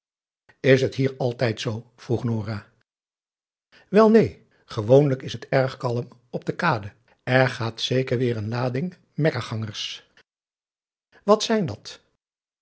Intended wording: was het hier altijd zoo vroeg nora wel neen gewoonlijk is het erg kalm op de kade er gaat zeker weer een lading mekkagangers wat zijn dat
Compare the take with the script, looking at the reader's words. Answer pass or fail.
fail